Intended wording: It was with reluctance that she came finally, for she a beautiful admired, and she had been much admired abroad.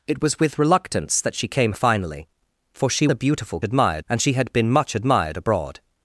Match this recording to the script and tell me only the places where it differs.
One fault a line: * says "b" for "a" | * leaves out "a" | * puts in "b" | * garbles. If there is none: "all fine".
all fine